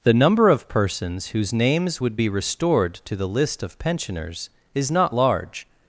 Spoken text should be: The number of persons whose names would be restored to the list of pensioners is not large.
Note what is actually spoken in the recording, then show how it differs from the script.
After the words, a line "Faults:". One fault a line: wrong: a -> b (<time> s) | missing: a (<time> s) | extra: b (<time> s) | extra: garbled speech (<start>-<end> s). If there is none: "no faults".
The number of persons whose names would be restored to the list of pensioners is not large.
Faults:
no faults